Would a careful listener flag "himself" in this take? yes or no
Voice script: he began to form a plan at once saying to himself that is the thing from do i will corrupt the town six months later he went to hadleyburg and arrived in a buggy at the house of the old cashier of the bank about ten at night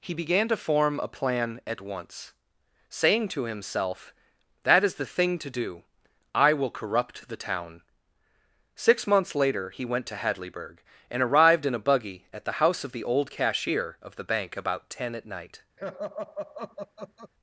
no